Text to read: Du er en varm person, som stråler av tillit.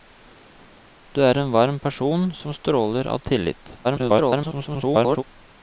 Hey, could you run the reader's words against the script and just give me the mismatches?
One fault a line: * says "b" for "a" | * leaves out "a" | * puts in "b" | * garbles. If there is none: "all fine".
* garbles